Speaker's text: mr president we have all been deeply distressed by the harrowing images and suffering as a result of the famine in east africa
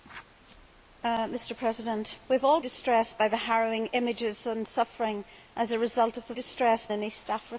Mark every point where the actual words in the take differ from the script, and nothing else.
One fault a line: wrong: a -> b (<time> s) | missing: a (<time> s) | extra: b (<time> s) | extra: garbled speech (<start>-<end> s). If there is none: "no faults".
missing: been deeply (2.6 s)
wrong: famine -> distressed (6.3 s)